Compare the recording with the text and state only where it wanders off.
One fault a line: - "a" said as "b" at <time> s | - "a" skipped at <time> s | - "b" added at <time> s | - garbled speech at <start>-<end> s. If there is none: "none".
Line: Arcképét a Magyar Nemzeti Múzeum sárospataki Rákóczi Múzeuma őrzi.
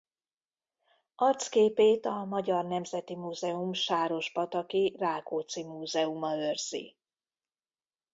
none